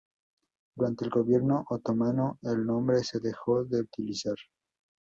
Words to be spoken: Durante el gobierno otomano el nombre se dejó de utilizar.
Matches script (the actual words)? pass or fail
pass